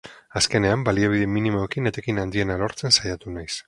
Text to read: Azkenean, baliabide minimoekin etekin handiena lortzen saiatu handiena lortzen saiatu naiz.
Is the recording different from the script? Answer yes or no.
yes